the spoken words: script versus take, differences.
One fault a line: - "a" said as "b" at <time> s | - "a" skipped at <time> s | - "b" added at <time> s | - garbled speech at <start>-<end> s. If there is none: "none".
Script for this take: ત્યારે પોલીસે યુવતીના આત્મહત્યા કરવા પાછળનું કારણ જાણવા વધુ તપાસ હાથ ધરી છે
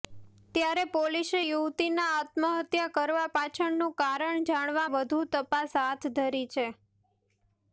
none